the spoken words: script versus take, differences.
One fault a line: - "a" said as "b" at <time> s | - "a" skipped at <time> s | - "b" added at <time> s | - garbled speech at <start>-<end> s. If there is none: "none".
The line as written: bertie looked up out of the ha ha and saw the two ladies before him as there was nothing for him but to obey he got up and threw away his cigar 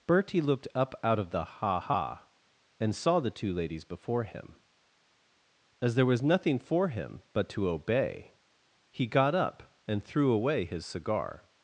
none